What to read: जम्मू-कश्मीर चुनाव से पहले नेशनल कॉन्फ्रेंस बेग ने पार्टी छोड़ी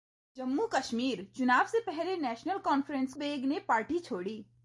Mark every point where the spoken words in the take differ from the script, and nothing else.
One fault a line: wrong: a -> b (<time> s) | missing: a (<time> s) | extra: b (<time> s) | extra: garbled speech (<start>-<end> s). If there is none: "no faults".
no faults